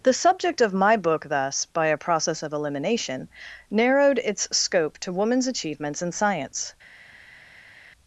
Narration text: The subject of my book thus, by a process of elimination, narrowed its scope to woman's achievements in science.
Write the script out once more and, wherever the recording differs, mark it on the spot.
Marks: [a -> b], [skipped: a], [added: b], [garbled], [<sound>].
The subject of my book thus, by a process of elimination, narrowed its scope to woman's achievements in science.